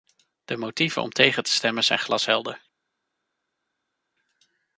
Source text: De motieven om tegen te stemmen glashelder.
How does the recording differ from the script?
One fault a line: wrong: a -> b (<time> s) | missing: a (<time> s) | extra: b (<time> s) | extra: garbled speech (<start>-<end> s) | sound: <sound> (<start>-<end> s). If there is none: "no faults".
extra: zijn (1.8 s)